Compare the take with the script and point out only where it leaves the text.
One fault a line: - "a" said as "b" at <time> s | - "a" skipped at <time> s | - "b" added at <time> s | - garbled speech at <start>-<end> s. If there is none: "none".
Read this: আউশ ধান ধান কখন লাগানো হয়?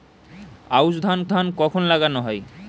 none